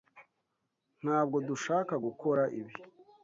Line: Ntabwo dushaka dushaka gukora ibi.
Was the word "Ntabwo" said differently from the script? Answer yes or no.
no